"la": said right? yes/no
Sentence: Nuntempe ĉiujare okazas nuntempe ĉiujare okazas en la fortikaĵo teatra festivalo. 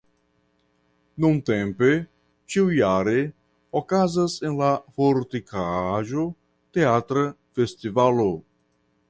yes